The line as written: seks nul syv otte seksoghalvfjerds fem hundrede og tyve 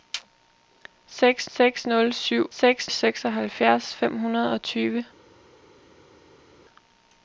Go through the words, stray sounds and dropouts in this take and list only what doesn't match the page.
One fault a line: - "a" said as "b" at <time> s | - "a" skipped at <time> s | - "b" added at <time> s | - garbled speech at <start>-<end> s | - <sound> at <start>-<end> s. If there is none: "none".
- "seks" added at 1.5 s
- "otte" said as "seks" at 2.6 s